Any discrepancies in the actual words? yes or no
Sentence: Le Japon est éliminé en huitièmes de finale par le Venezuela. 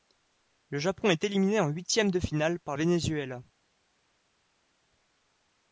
yes